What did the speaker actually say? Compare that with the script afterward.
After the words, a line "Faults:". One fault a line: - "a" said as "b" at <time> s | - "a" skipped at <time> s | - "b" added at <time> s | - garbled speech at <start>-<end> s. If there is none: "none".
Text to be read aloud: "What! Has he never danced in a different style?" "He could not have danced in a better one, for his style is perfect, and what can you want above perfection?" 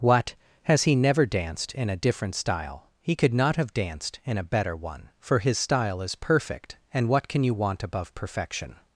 "What! Has he never danced in a different style?" "He could not have danced in a better one, for his style is perfect, and what can you want above perfection?"
Faults:
none